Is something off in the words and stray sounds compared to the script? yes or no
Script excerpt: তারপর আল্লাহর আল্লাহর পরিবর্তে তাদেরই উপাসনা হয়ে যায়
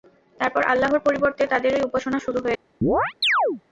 yes